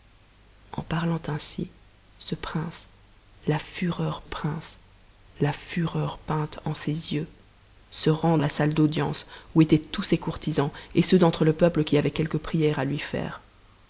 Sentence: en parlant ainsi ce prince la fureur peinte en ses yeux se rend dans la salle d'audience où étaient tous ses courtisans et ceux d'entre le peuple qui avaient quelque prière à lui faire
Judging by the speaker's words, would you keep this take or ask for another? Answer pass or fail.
fail